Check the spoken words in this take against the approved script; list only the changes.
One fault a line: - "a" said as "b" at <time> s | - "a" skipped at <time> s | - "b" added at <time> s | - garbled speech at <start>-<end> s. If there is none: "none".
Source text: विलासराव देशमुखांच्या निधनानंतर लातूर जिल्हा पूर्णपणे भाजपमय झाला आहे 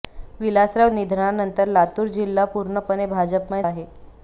- "देशमुखांच्या" skipped at 0.9 s
- "झाला" skipped at 3.6 s